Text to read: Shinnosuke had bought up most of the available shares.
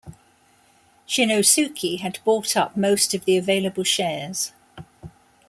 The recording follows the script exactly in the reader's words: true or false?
true